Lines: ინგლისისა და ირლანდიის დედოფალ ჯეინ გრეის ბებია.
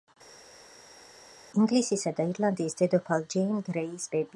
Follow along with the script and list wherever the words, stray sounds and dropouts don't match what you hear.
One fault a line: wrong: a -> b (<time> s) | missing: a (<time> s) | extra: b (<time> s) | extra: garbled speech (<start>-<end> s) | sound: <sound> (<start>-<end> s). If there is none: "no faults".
no faults